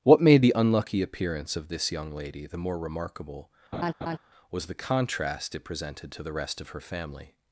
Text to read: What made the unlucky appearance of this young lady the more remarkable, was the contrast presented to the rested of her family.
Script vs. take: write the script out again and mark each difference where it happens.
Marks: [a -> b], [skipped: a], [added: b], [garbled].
What made the unlucky appearance of this young lady the more remarkable, was the contrast [added: it] presented to the [rested -> rest] of her family.